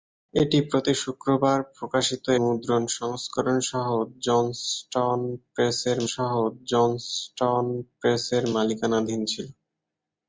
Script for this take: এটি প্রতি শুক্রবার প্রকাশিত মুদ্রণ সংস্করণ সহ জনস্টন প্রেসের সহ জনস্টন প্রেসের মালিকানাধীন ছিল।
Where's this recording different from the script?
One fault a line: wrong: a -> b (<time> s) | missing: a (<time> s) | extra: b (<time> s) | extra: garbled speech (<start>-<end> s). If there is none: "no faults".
no faults